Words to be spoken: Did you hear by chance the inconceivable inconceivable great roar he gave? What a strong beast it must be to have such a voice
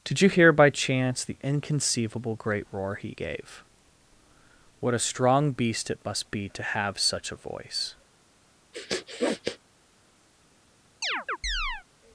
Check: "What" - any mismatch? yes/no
no